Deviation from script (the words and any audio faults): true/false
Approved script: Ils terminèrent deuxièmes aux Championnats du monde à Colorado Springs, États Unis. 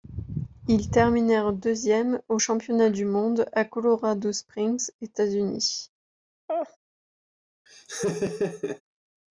true